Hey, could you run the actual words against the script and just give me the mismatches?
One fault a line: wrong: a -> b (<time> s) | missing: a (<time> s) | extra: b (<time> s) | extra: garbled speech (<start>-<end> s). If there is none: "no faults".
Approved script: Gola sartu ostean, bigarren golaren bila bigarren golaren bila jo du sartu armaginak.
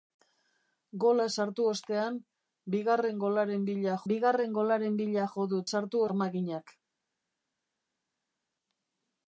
no faults